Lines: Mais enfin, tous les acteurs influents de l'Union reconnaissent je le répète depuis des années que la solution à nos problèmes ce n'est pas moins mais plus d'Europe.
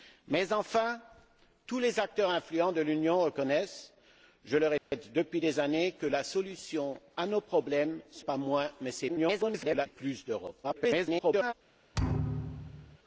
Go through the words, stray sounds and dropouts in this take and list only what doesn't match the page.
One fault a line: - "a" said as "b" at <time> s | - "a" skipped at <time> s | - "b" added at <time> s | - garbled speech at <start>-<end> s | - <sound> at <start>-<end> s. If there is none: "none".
- dropout at 4.8-4.9 s
- "n'est" skipped at 8.3 s
- garbled speech at 9.1-9.9 s
- garbled speech at 10.6-11.5 s
- thud at 11.9-13.0 s